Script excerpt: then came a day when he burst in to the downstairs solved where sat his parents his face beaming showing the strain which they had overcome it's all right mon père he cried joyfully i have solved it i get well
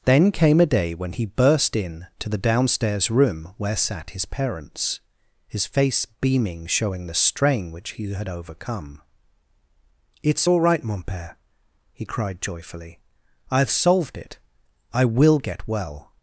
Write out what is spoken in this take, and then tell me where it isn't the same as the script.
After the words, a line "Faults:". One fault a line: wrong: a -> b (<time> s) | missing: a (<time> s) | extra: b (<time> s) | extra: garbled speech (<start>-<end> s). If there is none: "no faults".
then came a day when he burst in to the downstairs room where sat his parents his face beaming showing the strain which he had overcome it's all right mon père he cried joyfully i have solved it i will get well
Faults:
wrong: solved -> room (3.1 s)
wrong: they -> he (7.9 s)
extra: will (15.0 s)